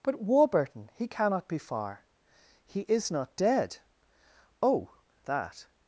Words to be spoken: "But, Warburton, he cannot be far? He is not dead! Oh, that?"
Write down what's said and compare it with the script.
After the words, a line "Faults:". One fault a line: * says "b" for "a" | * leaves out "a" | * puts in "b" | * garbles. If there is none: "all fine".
"But, Warburton, he cannot be far? He is not dead! Oh, that?"
Faults:
all fine